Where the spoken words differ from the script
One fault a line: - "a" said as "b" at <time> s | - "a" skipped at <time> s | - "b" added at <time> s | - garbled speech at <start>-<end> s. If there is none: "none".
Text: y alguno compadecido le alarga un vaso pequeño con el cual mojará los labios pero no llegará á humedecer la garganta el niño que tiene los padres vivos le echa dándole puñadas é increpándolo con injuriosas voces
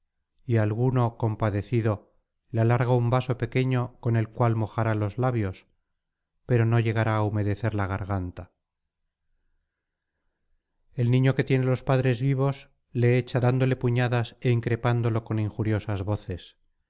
none